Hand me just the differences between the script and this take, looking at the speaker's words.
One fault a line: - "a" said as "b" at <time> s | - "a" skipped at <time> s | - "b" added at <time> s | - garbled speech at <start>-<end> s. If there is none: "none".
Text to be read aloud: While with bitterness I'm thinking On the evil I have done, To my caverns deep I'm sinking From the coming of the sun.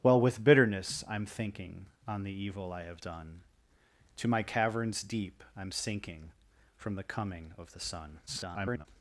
- garbled speech at 8.3-8.9 s